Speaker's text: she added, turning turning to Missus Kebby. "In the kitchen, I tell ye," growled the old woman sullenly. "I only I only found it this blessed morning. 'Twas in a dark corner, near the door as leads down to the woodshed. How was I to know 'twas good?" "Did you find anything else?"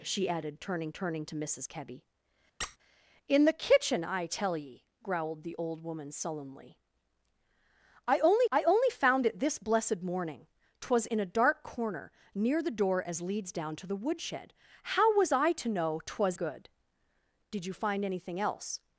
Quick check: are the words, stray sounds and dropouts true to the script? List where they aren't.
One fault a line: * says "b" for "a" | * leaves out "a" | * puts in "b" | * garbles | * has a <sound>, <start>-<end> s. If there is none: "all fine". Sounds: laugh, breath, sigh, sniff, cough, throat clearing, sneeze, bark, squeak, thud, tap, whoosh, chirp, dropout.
* has a squeak, 2.6-2.8 s